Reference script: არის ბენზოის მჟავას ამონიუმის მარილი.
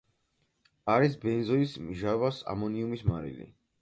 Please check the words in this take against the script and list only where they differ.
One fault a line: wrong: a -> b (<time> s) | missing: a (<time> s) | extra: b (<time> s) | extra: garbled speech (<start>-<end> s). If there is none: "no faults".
no faults